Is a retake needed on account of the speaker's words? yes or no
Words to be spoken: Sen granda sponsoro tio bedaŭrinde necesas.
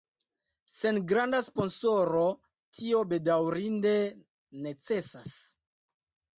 no